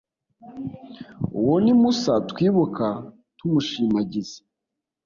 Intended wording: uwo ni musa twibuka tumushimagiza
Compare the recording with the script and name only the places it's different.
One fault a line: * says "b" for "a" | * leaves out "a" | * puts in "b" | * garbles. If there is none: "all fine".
all fine